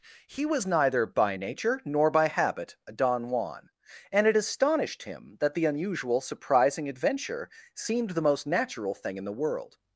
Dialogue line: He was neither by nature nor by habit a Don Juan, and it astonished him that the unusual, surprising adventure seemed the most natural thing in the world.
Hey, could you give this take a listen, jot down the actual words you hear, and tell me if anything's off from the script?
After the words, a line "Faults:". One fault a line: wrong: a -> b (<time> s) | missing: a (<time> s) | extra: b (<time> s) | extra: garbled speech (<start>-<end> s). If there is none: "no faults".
He was neither by nature nor by habit a Don Juan, and it astonished him that the unusual, surprising adventure seemed the most natural thing in the world.
Faults:
no faults